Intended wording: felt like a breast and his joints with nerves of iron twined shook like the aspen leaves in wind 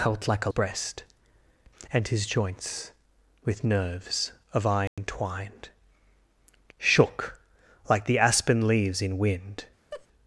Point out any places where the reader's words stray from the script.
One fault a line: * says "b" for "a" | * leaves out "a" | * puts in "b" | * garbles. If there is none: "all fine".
all fine